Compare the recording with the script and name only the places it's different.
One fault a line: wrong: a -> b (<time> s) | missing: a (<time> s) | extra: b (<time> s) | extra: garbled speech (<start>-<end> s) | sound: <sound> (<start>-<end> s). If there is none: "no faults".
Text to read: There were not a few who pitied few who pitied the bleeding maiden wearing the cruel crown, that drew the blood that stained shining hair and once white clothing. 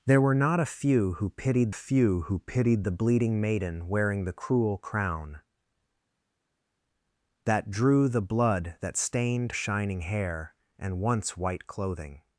no faults